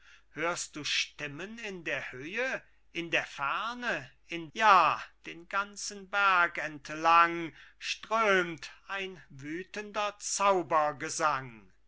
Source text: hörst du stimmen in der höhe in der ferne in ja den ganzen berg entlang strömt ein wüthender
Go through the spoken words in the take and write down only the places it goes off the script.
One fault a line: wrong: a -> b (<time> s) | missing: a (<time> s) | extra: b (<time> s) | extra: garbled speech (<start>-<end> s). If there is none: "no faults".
no faults